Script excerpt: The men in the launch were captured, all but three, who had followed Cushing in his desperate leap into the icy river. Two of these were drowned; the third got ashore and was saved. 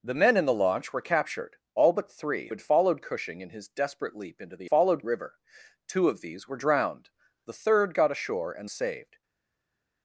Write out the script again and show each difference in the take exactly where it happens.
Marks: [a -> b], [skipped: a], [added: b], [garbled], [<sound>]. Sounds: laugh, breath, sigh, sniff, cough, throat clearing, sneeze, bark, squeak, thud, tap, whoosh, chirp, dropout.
The men in the launch were captured, all but three, [skipped: who] had followed Cushing in his desperate leap into the [icy -> followed] river. Two of these were drowned; the third got ashore and [skipped: was] saved.